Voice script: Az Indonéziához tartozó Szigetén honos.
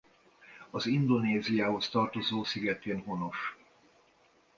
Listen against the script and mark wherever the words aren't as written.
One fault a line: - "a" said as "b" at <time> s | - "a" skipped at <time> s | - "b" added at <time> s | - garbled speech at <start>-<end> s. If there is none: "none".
none